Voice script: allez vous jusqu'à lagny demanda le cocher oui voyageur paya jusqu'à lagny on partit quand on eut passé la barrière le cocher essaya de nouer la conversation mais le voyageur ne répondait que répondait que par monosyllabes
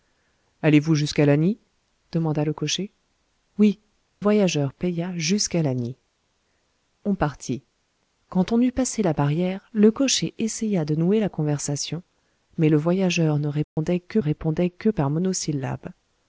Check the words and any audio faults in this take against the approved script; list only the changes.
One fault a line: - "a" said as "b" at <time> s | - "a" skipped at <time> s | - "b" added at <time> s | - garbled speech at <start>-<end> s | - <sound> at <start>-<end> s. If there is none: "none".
- dropout at 13.6-13.8 s